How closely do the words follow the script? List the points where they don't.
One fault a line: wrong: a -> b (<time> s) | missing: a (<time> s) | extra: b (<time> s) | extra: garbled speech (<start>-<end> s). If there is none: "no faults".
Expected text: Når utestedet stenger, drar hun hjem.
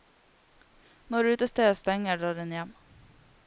no faults